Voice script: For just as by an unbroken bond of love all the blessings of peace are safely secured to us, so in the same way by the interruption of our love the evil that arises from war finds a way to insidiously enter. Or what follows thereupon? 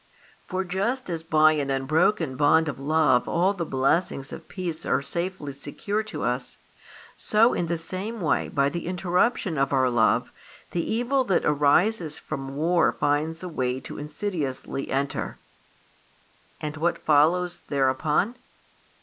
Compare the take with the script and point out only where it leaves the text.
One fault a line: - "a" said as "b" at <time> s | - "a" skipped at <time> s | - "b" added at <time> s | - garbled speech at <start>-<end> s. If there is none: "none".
- "Or" said as "And" at 16.6 s